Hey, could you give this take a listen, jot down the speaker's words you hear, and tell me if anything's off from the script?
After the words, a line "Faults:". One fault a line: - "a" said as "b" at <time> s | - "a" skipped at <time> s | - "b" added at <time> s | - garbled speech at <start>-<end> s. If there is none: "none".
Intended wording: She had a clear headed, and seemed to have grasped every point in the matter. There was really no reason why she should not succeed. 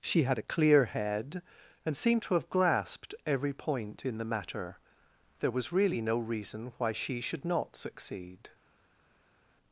She had a clear head, and seemed to have grasped every point in the matter. There was really no reason why she should not succeed.
Faults:
- "headed" said as "head" at 0.8 s